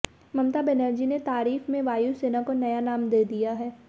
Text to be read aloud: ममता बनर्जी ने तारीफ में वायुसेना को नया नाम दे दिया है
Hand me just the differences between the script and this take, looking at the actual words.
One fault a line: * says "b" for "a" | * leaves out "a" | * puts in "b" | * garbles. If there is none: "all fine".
all fine